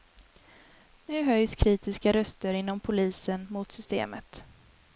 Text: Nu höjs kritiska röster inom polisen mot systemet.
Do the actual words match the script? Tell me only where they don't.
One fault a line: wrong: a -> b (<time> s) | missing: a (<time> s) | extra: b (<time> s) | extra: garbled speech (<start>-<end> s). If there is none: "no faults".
no faults